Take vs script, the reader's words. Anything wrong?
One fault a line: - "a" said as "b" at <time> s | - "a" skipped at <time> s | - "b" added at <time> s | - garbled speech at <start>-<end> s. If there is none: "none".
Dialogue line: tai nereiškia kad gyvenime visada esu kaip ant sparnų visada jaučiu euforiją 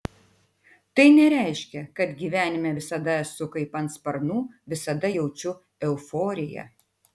none